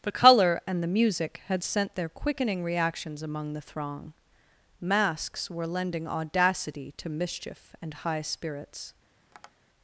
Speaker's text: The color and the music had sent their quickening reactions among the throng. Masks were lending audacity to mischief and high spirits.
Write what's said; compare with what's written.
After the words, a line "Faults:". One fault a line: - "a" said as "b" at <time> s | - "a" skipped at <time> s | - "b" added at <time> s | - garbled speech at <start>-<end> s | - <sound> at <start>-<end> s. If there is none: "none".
The color and the music had sent their quickening reactions among the throng. Masks were lending audacity to mischief and high spirits.
Faults:
- tap at 9.3-9.5 s